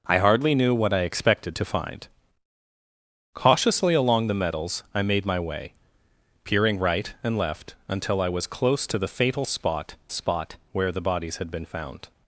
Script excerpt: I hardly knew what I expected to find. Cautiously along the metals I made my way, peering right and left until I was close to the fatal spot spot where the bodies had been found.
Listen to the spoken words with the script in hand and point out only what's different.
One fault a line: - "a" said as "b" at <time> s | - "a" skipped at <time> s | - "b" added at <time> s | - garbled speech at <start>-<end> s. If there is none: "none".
none